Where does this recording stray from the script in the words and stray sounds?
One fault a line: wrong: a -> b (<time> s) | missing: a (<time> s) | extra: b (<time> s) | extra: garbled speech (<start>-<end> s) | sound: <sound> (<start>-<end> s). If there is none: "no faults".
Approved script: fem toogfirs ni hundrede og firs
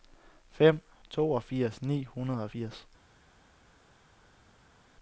no faults